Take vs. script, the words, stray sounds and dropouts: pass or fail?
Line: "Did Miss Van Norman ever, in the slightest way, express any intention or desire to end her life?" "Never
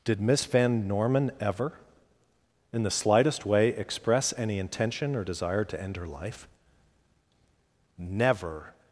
pass